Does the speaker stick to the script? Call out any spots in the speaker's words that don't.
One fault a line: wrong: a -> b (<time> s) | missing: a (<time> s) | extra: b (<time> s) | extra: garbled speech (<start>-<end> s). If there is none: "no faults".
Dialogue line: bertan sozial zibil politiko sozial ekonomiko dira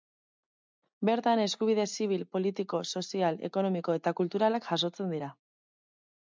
wrong: sozial -> eskubide (1.4 s)
extra: eta kulturalak jasotzen (4.0 s)